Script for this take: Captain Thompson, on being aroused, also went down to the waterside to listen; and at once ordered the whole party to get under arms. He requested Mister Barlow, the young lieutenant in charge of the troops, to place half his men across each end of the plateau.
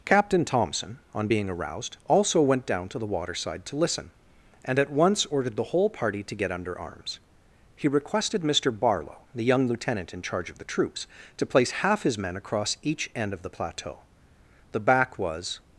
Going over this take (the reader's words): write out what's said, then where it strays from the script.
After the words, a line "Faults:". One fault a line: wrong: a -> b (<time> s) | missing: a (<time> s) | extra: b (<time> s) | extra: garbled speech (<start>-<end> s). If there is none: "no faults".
Captain Thompson, on being aroused, also went down to the waterside to listen; and at once ordered the whole party to get under arms. He requested Mister Barlow, the young lieutenant in charge of the troops, to place half his men across each end of the plateau. The back was
Faults:
extra: The back was (14.7 s)